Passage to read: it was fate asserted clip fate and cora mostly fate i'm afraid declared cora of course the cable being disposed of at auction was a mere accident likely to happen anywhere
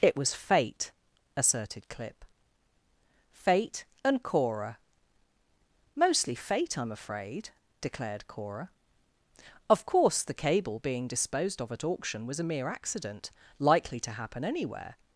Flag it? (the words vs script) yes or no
no